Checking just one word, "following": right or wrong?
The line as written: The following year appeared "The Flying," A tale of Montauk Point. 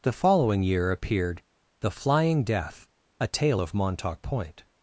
right